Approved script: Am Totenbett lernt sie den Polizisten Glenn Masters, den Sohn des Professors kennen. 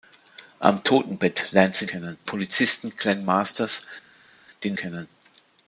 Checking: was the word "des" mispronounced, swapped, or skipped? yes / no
yes